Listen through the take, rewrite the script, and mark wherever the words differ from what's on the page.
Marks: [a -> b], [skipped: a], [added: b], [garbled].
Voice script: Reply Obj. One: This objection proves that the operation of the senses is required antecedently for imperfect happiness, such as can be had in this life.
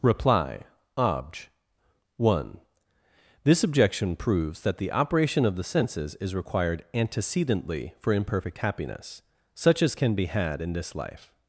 Reply Obj. One: This objection proves that the operation of the senses is required antecedently for imperfect happiness, such as can be had in this life.